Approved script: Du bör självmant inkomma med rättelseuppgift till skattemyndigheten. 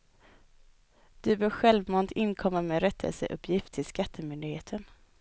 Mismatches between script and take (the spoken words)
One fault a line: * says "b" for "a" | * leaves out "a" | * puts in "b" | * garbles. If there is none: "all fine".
all fine